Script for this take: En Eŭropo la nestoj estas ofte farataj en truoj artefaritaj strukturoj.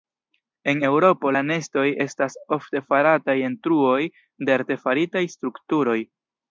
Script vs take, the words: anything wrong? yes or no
yes